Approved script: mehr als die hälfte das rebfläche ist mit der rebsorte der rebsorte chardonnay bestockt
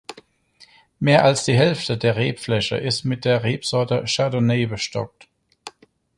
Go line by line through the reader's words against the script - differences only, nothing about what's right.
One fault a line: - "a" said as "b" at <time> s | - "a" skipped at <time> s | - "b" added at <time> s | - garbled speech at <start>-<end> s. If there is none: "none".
- "das" said as "der" at 1.9 s
- "der rebsorte" skipped at 4.0 s